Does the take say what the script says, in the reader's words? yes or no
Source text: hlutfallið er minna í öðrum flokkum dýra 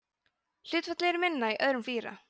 no